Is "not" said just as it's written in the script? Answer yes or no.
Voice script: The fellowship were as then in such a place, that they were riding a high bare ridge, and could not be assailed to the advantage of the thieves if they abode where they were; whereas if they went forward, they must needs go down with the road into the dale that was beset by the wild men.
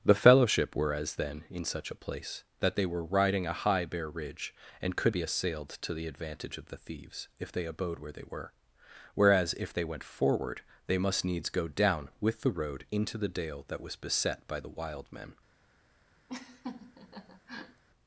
no